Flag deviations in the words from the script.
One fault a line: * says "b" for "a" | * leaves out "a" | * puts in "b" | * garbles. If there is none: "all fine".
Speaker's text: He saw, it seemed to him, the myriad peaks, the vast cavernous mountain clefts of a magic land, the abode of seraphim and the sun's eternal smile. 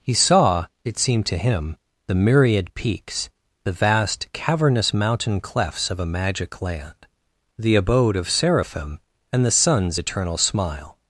all fine